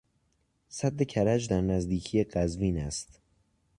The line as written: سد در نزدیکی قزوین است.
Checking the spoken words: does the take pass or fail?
fail